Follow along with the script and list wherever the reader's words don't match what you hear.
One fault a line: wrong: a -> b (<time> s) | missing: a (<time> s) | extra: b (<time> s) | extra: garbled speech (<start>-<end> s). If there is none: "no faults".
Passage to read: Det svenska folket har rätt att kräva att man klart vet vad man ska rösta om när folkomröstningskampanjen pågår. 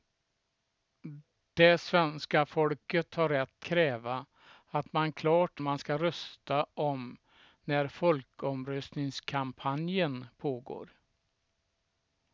missing: att (3.7 s)
missing: vet vad (5.6 s)